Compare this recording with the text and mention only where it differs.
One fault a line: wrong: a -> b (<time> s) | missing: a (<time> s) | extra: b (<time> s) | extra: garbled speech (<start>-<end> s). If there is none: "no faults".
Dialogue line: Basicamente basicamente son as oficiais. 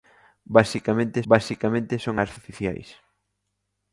no faults